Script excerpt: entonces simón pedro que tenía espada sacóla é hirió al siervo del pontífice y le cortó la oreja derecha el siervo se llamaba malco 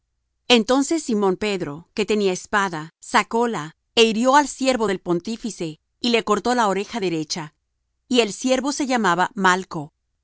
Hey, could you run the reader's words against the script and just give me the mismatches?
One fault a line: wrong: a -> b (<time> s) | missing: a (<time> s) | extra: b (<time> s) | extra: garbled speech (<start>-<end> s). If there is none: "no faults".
extra: y (8.1 s)